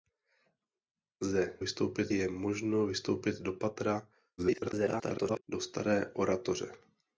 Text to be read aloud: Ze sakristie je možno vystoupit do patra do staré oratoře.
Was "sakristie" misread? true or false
true